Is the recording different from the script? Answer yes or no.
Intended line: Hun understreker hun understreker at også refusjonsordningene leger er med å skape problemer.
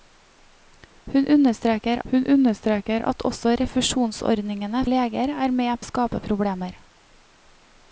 no